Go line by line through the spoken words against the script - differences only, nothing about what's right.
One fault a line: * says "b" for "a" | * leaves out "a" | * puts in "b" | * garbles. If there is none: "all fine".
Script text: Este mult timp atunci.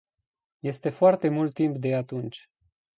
* puts in "foarte"
* puts in "de"